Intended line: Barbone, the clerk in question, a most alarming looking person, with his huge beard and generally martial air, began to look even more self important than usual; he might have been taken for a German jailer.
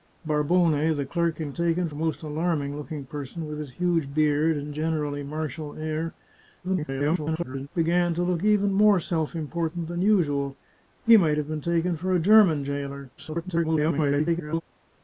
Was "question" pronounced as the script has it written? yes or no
no